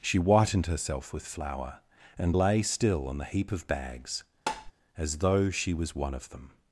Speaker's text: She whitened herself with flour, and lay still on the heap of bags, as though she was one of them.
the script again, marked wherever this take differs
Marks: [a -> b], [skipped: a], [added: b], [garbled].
She whitened herself with flour, and lay still on the heap of bags, as though she was one of them.